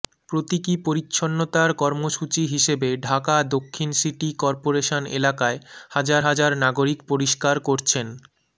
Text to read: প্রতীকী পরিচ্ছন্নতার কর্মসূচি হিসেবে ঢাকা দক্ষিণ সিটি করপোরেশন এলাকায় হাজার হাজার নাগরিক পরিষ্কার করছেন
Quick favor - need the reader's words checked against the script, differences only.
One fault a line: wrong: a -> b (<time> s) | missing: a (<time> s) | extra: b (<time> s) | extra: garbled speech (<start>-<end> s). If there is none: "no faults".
no faults